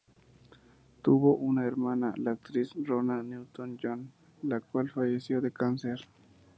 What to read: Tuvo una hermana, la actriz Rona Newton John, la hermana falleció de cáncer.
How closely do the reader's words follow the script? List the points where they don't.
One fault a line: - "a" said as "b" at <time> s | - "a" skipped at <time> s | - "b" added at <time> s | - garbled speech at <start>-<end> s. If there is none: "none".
- "hermana" said as "cual" at 4.6 s